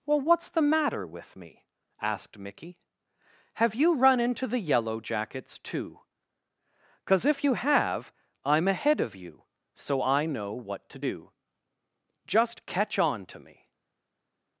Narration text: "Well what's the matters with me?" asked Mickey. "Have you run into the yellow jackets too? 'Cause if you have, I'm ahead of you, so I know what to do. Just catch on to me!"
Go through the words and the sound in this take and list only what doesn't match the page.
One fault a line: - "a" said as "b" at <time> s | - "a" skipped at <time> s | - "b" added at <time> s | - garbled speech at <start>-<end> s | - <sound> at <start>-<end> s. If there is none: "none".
- "matters" said as "matter" at 0.6 s